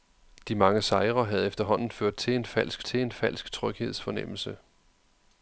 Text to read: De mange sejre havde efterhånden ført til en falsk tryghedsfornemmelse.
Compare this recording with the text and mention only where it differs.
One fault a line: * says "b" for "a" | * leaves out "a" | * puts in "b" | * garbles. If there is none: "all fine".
* puts in "til en falsk"